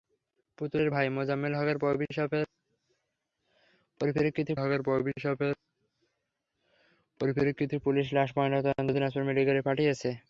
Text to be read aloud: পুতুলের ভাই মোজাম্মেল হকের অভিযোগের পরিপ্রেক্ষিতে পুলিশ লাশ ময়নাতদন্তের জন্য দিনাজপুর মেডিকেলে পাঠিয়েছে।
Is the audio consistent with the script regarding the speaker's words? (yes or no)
no